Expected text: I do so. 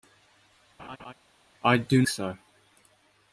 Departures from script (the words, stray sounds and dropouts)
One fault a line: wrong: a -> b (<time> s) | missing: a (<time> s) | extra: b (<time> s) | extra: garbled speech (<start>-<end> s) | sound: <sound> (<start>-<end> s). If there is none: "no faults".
sound: laugh (0.8-1.1 s)